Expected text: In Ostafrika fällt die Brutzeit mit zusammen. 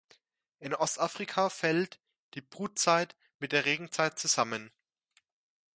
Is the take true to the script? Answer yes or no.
no